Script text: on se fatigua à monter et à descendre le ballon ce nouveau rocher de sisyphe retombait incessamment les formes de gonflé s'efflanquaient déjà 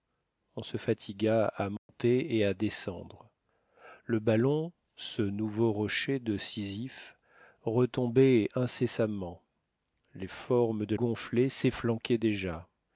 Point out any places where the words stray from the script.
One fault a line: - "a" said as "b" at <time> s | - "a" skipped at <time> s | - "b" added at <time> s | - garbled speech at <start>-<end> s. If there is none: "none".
none